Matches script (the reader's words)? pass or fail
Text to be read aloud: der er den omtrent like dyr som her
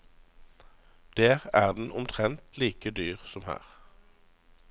pass